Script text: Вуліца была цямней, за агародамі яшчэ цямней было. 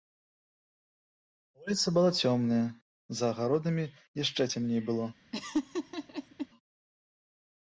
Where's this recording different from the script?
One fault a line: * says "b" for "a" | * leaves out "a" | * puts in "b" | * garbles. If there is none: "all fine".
* says "цёмная" for "цямней"